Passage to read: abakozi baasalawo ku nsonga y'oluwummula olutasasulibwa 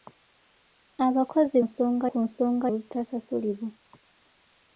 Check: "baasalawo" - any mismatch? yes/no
yes